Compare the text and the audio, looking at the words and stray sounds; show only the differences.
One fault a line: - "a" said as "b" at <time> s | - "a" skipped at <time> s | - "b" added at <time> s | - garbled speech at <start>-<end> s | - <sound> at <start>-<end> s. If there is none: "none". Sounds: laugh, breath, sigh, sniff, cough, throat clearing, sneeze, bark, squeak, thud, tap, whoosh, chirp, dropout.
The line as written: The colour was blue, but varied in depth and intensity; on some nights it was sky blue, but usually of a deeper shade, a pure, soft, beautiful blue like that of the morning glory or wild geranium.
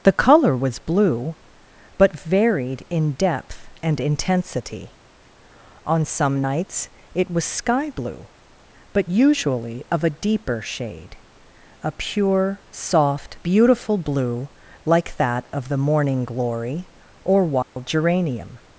- dropout at 17.6-17.8 s